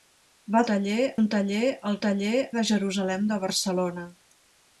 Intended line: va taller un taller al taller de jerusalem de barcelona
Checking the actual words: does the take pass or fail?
pass